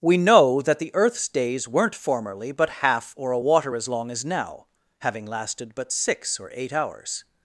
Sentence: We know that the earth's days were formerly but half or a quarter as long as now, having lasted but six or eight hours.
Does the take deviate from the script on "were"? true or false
true